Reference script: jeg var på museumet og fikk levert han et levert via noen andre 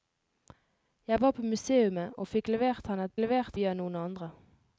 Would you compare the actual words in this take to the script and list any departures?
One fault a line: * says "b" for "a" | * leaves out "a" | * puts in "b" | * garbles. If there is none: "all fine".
all fine